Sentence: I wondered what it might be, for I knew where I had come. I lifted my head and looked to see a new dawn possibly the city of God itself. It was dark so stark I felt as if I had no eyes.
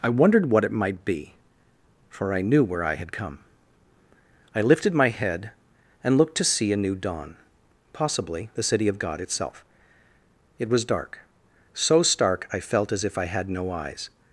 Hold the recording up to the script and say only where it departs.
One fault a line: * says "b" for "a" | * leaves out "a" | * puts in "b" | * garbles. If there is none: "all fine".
all fine